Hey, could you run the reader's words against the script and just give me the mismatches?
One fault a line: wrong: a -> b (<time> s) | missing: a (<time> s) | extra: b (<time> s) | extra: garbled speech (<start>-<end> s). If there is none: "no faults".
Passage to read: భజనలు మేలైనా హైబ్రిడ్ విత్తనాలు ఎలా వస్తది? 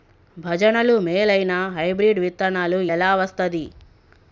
no faults